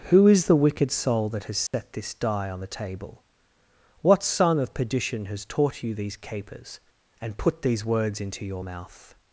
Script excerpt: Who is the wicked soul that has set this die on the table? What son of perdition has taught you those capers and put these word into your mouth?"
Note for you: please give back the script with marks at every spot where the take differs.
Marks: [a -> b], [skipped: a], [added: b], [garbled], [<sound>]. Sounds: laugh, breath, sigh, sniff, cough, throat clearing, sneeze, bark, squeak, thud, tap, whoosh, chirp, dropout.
Who is the wicked soul that has set [dropout] this die on the table? What son of perdition has taught you [those -> these] capers and put these [word -> words] into your mouth?"